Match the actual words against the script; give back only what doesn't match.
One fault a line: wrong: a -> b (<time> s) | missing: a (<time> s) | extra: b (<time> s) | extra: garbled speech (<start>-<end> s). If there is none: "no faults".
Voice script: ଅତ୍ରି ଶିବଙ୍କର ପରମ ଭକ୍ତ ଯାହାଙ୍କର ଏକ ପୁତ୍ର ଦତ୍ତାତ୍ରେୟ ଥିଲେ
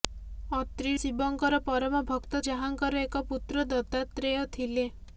no faults